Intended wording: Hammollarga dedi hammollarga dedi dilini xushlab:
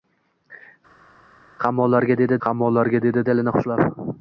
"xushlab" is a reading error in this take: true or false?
false